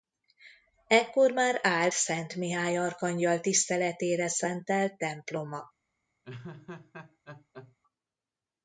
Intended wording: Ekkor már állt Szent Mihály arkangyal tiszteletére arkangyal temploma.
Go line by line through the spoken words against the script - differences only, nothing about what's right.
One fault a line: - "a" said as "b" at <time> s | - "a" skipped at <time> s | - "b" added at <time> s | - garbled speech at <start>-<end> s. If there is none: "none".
- "arkangyal" said as "szentelt" at 4.3 s